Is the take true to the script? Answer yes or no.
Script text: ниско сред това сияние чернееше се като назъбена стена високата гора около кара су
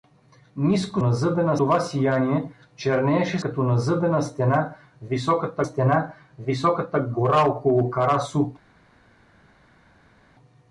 no